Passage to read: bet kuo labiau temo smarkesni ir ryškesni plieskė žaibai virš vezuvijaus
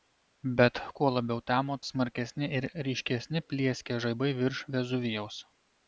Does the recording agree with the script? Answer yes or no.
yes